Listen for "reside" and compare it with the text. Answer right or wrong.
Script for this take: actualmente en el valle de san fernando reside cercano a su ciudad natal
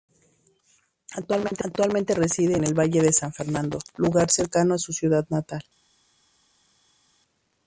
wrong